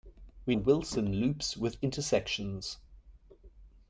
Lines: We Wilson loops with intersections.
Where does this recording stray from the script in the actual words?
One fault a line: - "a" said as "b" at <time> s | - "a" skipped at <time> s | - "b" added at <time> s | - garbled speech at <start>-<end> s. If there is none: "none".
none